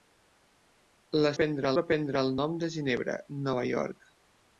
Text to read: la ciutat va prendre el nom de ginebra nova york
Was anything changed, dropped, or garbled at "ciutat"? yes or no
yes